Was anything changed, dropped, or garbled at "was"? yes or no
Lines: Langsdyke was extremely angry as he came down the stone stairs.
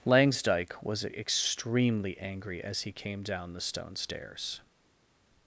no